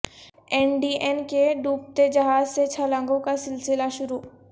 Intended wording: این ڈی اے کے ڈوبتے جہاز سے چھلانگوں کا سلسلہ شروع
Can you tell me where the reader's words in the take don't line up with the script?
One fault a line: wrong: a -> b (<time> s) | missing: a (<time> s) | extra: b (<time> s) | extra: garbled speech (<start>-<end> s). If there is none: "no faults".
no faults